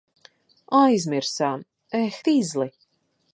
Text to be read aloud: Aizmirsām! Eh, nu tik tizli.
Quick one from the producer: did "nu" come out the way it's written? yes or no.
no